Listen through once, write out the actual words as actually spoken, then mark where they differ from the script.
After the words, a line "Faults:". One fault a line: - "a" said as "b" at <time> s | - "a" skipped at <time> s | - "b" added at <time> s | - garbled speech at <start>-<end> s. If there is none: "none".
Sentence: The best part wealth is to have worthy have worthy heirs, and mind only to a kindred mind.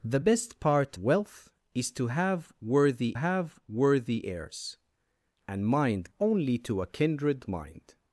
The best part wealth is to have worthy have worthy heirs, and mind only to a kindred mind.
Faults:
none